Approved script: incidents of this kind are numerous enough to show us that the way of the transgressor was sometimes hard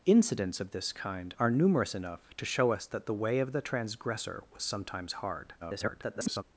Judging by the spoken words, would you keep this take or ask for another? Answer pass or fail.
fail